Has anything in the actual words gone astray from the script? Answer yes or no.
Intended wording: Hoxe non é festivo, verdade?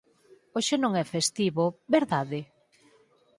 no